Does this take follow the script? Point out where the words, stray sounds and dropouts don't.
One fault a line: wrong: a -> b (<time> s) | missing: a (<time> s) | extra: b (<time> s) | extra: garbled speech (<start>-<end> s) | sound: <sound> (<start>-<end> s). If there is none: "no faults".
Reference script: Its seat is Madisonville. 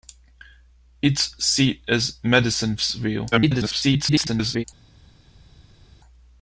extra: garbled speech (3.3-4.6 s)